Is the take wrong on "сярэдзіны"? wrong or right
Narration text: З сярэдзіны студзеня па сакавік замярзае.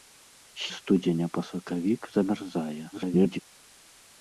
wrong